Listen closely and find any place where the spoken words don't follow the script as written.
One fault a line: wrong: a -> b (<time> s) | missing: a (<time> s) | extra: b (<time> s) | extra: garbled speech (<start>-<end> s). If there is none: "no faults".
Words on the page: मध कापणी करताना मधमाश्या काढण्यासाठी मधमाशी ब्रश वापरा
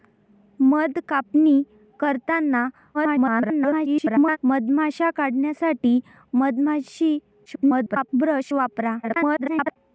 extra: garbled speech (2.9-4.4 s)
extra: garbled speech (7.5-8.1 s)
extra: garbled speech (9.0-9.8 s)